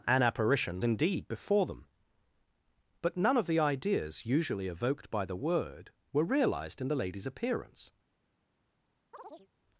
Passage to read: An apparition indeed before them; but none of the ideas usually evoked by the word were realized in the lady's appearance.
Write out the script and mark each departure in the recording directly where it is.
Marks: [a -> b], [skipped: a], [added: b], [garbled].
An apparition indeed before them; but none of the ideas usually evoked by the word were realized in the lady's appearance.